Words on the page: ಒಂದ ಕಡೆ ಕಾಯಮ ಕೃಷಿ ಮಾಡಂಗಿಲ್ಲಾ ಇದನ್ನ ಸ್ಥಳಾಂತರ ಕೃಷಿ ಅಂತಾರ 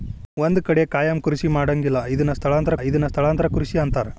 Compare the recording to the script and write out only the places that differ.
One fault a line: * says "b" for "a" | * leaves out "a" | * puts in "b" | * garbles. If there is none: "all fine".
* puts in "ಇದನ್ನ ಸ್ಥಳಾಂತರ"